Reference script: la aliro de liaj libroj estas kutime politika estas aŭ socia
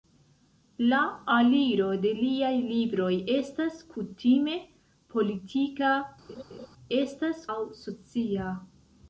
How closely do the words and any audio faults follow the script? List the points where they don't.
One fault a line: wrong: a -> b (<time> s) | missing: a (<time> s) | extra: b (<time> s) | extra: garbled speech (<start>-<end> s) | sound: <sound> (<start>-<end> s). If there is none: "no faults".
sound: laugh (6.3-6.7 s)